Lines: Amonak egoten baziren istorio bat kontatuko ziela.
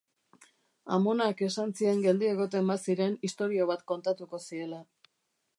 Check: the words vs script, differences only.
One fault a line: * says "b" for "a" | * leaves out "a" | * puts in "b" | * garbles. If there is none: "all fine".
* puts in "esan zien geldi"